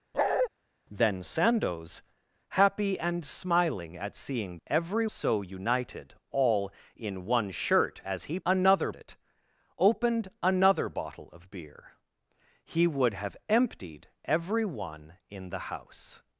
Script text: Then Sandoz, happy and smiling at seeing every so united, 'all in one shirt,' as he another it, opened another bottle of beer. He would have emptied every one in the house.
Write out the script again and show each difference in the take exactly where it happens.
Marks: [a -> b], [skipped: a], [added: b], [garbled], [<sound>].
[bark] Then Sandoz, happy and smiling at seeing every so united, 'all in one shirt,' as he another it, opened another bottle of beer. He would have emptied every one in the house.